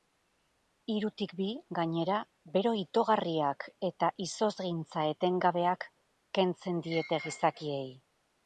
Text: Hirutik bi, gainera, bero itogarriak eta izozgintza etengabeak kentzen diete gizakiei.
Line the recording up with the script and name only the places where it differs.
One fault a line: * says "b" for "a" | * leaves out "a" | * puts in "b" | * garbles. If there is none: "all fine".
all fine